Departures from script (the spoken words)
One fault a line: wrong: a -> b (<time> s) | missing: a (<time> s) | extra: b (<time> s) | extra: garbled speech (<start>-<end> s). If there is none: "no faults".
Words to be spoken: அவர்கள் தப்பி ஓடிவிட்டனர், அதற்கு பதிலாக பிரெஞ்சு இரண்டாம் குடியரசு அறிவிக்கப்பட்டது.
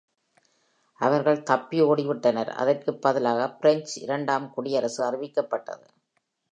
no faults